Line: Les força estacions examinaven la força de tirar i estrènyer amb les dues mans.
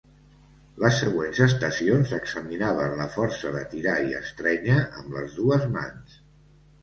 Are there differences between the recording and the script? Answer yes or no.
yes